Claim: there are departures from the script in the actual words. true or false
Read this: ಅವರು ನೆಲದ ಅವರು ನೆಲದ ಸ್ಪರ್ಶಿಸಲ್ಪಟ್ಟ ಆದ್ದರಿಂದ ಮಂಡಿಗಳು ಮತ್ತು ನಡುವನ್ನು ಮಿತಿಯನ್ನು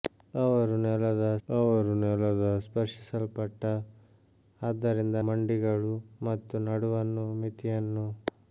false